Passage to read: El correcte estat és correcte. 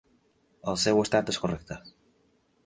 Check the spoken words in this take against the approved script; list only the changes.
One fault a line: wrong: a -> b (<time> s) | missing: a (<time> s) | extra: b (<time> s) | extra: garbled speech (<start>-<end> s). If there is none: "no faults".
wrong: correcte -> seu (0.8 s)